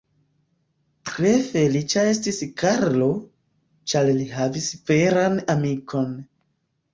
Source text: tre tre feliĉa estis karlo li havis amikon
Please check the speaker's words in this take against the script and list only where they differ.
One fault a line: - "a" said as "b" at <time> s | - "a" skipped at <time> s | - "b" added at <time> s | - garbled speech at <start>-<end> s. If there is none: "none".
- "tre" skipped at 1.3 s
- "ĉar" added at 3.9 s
- "veran" added at 4.9 s